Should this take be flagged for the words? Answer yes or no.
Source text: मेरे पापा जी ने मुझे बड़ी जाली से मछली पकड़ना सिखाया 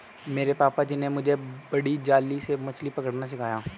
no